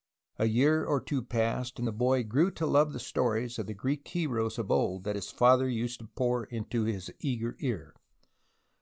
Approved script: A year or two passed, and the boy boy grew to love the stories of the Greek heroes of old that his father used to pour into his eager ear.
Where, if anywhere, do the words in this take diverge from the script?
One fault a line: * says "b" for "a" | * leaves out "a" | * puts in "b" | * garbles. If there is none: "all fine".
* leaves out "boy"